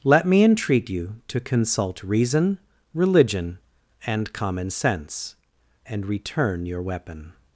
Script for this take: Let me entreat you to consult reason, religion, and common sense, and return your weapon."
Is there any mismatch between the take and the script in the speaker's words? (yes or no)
no